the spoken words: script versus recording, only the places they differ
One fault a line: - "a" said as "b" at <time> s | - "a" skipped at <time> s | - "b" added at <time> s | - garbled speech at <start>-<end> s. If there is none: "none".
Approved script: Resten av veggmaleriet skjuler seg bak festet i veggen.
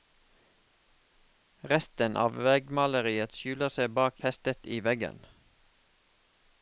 none